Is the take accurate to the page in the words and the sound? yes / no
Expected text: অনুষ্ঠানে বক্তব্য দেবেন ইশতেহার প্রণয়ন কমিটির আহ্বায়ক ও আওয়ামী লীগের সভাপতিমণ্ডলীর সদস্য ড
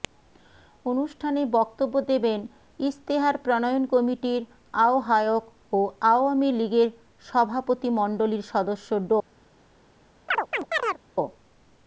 no